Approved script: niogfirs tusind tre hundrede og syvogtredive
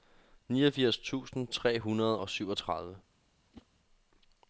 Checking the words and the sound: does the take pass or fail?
fail